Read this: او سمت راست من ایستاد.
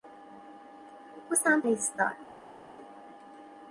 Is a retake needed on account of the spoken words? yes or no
yes